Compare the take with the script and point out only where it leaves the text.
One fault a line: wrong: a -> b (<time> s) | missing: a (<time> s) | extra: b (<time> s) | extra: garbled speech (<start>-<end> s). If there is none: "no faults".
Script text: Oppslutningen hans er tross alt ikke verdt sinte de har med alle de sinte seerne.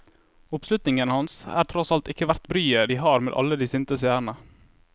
wrong: sinte -> bryet (2.5 s)